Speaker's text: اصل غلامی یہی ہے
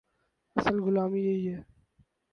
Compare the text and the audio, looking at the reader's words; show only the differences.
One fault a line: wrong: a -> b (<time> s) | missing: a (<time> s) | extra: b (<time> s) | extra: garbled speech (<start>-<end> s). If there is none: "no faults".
no faults